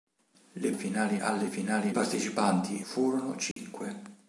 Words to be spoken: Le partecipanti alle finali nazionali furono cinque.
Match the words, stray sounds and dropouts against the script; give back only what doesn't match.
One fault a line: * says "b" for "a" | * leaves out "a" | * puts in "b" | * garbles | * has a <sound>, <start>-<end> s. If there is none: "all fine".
* says "finali" for "partecipanti"
* says "partecipanti" for "nazionali"
* has a dropout, 3.5-3.6 s